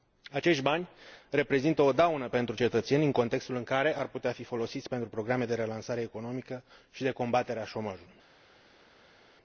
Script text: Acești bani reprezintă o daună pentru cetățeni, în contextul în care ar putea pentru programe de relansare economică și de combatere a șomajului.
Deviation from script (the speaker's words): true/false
true